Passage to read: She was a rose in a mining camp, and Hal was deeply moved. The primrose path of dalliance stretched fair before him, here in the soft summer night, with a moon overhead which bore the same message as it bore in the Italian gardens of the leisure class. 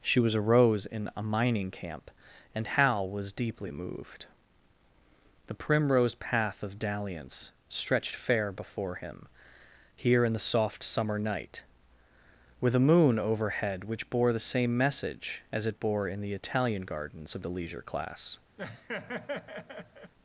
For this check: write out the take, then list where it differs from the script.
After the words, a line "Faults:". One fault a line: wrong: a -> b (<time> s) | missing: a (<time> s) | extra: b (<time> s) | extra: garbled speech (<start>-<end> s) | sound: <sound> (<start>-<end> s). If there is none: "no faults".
She was a rose in a mining camp, and Hal was deeply moved. The primrose path of dalliance stretched fair before him, here in the soft summer night, with a moon overhead which bore the same message as it bore in the Italian gardens of the leisure class.
Faults:
sound: laugh (18.6-20.1 s)